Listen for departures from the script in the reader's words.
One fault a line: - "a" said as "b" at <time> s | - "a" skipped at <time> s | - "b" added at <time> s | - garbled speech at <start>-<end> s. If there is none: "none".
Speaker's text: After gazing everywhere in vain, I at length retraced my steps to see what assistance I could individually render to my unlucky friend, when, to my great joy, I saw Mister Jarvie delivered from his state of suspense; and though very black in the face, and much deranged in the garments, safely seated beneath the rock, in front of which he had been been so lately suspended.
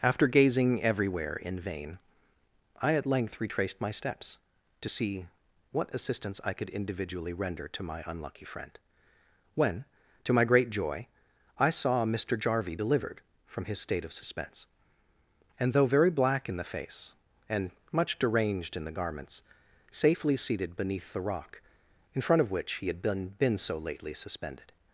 none